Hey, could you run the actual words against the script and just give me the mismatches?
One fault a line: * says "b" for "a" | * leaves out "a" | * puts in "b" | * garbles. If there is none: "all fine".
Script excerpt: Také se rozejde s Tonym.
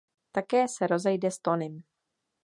all fine